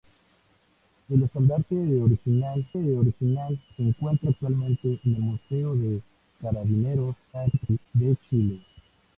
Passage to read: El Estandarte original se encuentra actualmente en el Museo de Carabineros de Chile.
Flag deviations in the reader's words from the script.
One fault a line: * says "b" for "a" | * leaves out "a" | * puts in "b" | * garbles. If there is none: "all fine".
* puts in "original"
* garbles